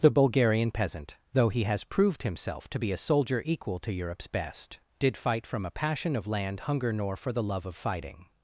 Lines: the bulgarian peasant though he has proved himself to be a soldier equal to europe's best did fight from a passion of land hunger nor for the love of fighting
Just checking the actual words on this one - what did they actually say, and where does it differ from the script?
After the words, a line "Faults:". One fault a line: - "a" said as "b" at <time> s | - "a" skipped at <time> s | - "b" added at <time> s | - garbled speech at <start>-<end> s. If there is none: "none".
the bulgarian peasant though he has proved himself to be a soldier equal to europe's best did fight from a passion of land hunger nor for the love of fighting
Faults:
none